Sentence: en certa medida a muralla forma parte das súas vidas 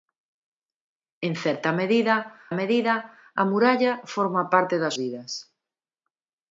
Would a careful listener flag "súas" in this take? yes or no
yes